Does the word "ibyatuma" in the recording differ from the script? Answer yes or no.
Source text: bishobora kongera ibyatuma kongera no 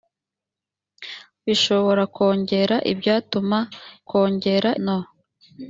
no